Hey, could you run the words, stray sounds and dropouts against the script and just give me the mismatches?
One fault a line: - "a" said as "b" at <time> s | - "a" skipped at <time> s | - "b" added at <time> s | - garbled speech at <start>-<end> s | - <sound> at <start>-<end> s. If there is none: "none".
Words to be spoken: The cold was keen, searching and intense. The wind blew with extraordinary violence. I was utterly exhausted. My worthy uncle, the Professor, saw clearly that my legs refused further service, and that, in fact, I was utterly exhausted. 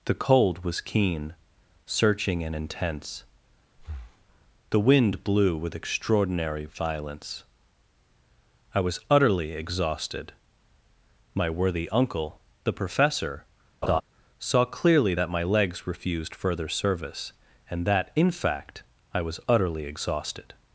- breath at 3.8-4.3 s
- laugh at 13.8-14.0 s